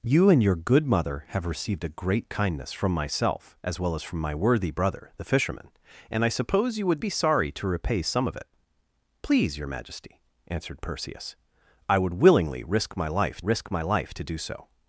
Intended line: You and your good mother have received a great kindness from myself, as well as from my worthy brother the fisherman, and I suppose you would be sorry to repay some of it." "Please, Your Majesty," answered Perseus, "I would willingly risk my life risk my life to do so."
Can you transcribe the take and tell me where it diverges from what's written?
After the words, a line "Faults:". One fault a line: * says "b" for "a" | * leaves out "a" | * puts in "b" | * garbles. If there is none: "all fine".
You and your good mother have received a great kindness from myself, as well as from my worthy brother the fisherman, and I suppose you would be sorry to repay some of it." "Please, Your Majesty," answered Perseus, "I would willingly risk my life risk my life to do so."
Faults:
all fine